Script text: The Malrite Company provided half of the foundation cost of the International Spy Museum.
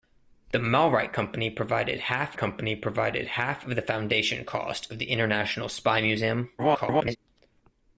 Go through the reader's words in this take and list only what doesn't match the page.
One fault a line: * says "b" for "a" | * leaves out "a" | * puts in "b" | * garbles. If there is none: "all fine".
* puts in "Company provided half"
* garbles